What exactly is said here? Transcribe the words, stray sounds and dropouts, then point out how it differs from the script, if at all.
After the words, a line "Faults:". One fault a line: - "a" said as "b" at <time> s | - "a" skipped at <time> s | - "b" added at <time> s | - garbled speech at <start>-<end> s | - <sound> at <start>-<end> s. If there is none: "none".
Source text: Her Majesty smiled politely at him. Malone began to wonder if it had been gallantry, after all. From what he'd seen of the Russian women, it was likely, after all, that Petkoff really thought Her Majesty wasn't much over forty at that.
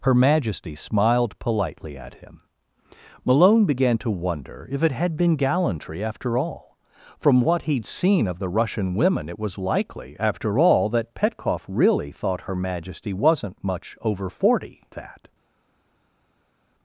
Her Majesty smiled politely at him. Malone began to wonder if it had been gallantry, after all. From what he'd seen of the Russian women, it was likely, after all, that Petkoff really thought Her Majesty wasn't much over forty that.
Faults:
- "at" skipped at 14.8 s